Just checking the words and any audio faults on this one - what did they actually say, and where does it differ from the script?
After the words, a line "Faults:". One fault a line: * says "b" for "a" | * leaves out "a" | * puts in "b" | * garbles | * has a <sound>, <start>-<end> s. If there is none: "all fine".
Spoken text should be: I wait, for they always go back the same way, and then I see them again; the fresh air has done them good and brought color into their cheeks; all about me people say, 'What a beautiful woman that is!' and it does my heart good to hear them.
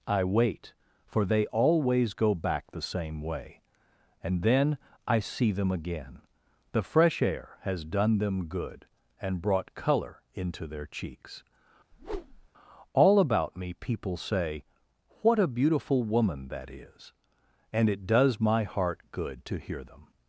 I wait, for they always go back the same way, and then I see them again; the fresh air has done them good and brought color into their cheeks; all about me people say, 'What a beautiful woman that is!' and it does my heart good to hear them.
Faults:
* has a whoosh, 11.9-12.5 s